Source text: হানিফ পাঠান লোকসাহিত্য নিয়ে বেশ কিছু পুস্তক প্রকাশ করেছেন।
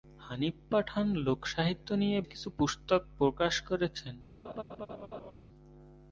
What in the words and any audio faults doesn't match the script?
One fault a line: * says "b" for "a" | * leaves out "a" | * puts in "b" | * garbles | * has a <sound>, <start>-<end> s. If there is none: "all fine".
* leaves out "বেশ"
* has a laugh, 4.4-5.3 s